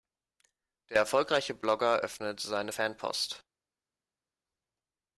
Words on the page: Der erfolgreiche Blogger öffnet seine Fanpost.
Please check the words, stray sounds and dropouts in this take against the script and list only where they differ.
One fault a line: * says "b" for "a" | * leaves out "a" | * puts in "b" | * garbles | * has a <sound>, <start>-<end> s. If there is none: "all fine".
all fine